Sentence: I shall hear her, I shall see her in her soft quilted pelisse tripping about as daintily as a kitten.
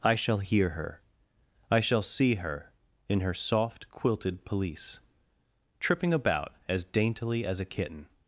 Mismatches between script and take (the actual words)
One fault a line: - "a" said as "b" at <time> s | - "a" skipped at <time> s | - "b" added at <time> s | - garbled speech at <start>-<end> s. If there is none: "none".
none